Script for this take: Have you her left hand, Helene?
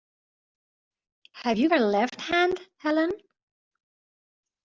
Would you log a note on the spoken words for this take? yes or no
no